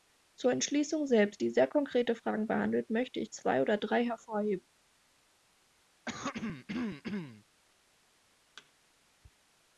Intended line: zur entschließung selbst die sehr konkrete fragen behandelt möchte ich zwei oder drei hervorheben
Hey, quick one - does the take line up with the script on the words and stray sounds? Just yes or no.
no